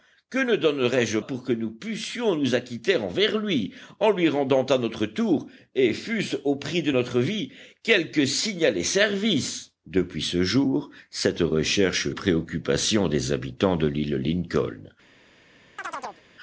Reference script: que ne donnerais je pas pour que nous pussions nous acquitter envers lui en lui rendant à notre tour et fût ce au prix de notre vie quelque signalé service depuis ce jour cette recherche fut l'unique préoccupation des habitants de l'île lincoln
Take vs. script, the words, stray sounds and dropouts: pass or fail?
fail